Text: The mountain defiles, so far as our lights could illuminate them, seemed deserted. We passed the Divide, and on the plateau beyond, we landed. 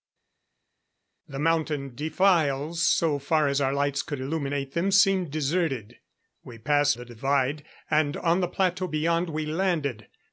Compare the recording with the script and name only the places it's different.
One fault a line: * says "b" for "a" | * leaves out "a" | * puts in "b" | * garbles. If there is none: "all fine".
all fine